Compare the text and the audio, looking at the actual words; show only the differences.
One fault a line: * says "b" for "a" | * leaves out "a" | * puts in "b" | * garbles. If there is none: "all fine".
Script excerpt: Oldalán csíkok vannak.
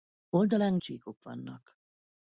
all fine